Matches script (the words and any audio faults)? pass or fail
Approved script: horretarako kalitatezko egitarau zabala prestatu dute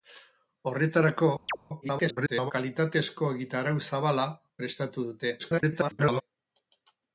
fail